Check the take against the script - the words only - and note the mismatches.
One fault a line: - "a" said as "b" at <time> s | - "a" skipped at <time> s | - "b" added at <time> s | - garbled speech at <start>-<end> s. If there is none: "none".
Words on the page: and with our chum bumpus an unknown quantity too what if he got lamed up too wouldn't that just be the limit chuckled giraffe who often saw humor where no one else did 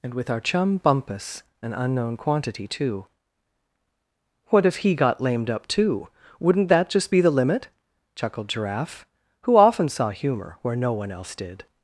none